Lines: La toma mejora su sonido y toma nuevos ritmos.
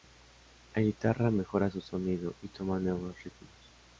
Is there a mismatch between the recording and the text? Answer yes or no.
yes